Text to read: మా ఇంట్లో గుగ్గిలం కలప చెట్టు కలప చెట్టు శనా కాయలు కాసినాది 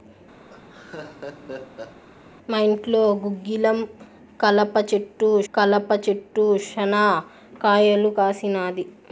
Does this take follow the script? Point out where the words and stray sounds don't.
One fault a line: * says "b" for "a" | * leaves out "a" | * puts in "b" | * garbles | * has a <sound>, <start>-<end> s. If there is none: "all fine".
* has a laugh, 0.5-2.0 s